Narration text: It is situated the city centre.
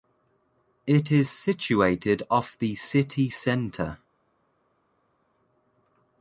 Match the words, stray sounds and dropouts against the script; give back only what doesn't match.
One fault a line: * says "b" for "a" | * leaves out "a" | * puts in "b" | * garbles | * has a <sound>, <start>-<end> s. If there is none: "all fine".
* puts in "off"